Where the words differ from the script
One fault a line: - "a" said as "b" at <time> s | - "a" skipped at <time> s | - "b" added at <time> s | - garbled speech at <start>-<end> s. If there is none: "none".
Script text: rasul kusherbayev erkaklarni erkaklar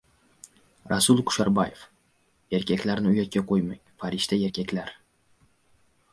- "uyatga qo‘ymang farishta" added at 3.1 s